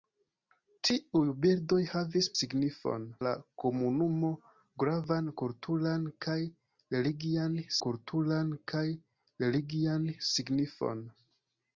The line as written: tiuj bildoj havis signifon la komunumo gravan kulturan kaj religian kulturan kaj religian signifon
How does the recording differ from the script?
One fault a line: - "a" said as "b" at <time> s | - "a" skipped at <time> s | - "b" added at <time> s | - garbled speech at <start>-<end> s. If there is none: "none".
none